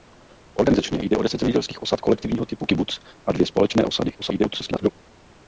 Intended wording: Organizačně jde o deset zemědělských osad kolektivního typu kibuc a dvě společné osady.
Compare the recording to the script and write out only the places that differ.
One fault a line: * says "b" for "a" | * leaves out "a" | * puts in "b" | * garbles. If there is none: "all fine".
* garbles